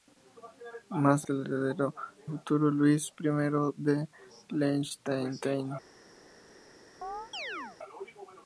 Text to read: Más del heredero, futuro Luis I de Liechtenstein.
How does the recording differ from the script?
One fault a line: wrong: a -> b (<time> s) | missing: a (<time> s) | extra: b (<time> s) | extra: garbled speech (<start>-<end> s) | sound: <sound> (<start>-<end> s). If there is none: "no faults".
sound: chirp (7.0-7.8 s)